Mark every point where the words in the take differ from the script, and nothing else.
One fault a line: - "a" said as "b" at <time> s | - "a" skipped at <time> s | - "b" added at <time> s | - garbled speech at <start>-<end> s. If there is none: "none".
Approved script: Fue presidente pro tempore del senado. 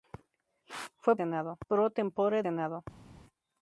- "presidente" said as "senado" at 1.1 s
- "del" skipped at 2.4 s